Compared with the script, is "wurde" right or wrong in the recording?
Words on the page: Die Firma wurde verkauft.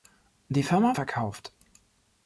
wrong